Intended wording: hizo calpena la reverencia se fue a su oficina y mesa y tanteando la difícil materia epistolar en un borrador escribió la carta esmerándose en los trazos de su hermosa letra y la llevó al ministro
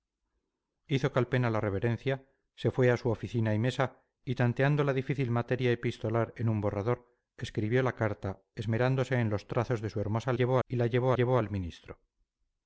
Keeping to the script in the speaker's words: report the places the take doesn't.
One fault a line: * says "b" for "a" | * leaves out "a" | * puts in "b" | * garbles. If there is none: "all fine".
* says "llevó" for "letra"
* puts in "llevó"